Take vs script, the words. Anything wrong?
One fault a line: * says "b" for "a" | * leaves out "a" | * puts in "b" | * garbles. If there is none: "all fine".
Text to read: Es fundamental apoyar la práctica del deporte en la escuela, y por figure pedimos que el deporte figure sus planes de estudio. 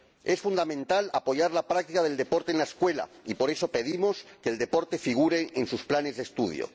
* says "eso" for "figure"
* puts in "en"